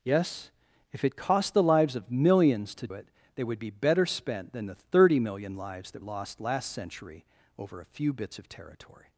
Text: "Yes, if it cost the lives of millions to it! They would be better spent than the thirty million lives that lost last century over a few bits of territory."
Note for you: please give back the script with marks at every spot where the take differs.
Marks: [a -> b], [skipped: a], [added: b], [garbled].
"Yes, if it cost the lives of millions to it! They would be better spent than the thirty million lives that lost last century over a few bits of territory."